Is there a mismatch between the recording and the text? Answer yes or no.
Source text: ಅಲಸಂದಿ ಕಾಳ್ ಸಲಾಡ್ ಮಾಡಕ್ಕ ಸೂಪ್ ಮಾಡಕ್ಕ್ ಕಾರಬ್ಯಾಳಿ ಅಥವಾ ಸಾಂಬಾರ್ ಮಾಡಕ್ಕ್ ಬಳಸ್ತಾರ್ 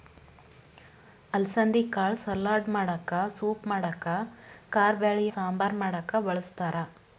yes